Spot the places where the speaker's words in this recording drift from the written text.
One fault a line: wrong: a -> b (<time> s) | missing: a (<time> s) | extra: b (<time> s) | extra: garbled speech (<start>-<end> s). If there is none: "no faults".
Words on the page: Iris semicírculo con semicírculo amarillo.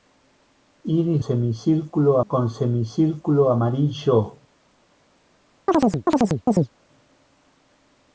no faults